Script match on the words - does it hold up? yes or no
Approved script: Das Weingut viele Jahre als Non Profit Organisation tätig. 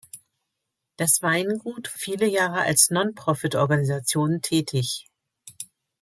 yes